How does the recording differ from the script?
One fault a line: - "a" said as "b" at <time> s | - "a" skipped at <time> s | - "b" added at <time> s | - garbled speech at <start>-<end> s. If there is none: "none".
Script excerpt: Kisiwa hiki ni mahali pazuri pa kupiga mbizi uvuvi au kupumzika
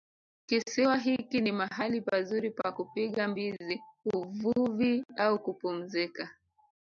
none